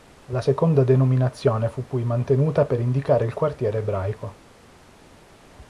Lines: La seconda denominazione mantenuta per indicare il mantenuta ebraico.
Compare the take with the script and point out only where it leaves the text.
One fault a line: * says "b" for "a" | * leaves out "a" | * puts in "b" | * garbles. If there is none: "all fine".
* puts in "fu poi"
* says "quartiere" for "mantenuta"